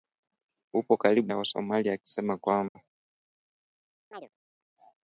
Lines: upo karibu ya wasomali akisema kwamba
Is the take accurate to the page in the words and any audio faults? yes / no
no